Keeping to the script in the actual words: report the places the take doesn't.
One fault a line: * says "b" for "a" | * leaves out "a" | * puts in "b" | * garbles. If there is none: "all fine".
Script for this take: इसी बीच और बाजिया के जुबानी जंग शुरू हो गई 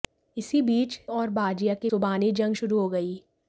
all fine